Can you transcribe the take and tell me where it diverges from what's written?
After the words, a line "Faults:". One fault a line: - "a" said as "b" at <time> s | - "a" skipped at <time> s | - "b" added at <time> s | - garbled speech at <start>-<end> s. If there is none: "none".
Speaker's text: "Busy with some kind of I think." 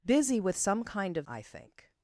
"Busy with some kind of I think."
Faults:
none